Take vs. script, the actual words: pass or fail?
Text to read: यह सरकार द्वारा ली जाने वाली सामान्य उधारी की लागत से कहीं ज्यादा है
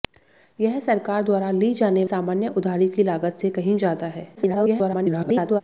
fail